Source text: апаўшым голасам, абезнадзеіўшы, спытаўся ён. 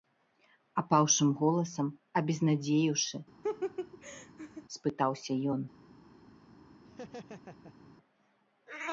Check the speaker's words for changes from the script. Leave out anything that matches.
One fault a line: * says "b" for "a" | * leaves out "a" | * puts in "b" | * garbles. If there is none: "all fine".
all fine